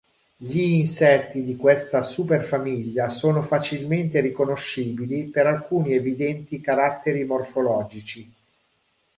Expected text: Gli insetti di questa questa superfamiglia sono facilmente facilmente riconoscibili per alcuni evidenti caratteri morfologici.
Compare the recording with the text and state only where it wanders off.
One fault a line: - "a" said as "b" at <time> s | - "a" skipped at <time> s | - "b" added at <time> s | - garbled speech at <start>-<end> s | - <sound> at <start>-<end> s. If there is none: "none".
- "questa" skipped at 2.0 s
- "facilmente" skipped at 4.2 s